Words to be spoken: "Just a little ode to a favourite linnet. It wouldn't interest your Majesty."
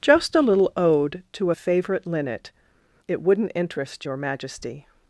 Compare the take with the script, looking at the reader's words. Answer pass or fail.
pass